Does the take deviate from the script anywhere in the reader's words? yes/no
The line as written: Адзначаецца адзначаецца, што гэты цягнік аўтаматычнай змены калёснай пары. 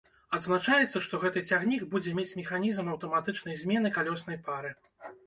yes